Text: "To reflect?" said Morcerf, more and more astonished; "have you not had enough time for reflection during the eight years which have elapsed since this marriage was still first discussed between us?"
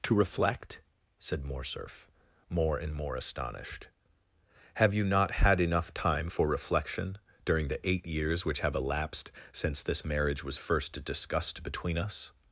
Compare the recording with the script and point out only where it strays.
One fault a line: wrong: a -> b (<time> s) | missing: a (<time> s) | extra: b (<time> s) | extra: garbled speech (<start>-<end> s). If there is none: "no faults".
missing: still (10.6 s)